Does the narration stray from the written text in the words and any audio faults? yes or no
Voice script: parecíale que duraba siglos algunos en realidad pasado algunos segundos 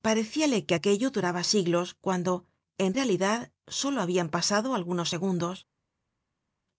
yes